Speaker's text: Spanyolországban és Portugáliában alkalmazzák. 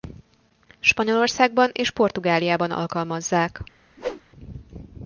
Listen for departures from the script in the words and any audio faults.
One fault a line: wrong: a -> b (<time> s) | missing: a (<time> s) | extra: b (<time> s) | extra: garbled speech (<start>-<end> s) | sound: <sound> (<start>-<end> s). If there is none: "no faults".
sound: whoosh (4.0-4.2 s)